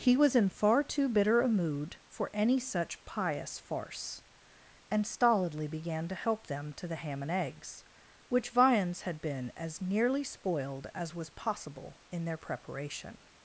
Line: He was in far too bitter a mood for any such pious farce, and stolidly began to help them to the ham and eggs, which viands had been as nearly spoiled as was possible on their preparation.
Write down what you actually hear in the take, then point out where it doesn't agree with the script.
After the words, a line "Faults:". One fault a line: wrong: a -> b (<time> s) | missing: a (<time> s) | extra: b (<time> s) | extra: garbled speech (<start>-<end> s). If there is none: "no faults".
He was in far too bitter a mood for any such pious farce, and stolidly began to help them to the ham and eggs, which viands had been as nearly spoiled as was possible in their preparation.
Faults:
wrong: on -> in (12.1 s)